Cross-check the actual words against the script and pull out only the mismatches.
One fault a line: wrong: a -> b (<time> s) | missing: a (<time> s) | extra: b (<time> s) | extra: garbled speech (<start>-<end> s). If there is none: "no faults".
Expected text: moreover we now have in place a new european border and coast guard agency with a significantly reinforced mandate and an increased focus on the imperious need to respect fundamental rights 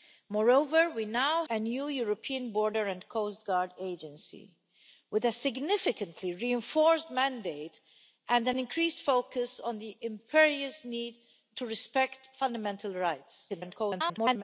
missing: have in place (1.4 s)
extra: garbled speech (13.5-14.4 s)